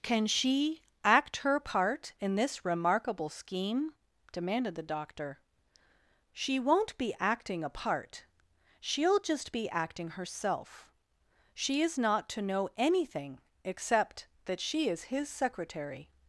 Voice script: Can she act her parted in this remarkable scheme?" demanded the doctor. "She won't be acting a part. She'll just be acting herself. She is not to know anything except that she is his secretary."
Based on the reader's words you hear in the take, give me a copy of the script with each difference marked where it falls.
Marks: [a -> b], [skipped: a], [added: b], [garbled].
Can she act her [parted -> part] in this remarkable scheme?" demanded the doctor. "She won't be acting a part. She'll just be acting herself. She is not to know anything except that she is his secretary."